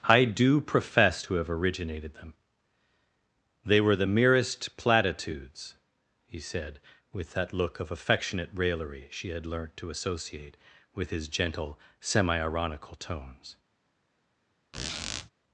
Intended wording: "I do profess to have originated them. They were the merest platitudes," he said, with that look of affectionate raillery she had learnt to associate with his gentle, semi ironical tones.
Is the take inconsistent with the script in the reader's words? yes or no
no